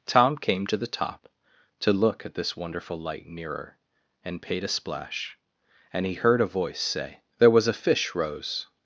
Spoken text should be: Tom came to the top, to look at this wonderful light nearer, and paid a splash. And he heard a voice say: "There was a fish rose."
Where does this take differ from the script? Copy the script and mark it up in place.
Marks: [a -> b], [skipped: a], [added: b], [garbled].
Tom came to the top, to look at this wonderful light nearer, and paid a splash. And he heard a voice say: "There was a fish rose."